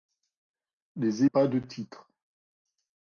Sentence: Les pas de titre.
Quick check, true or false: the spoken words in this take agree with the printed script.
true